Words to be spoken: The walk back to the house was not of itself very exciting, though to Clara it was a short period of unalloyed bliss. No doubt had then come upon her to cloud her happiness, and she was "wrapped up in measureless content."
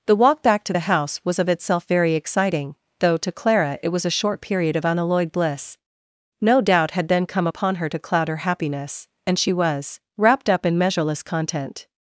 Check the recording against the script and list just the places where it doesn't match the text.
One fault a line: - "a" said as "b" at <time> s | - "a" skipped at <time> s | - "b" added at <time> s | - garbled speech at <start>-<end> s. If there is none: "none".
- "not" skipped at 1.4 s